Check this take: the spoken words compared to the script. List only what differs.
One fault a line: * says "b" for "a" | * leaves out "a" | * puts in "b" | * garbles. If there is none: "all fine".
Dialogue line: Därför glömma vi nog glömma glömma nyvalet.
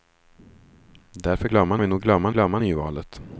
all fine